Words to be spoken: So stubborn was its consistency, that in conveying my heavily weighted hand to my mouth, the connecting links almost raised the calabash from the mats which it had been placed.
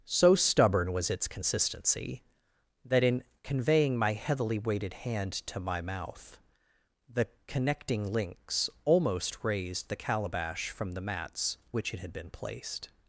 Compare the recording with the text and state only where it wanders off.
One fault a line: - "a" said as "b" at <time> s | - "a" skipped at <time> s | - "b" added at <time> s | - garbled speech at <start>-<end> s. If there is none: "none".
none